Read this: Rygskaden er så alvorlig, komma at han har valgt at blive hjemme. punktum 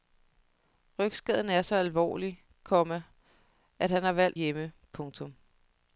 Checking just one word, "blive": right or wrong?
wrong